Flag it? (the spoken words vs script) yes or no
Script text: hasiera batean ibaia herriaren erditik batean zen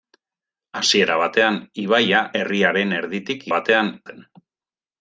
no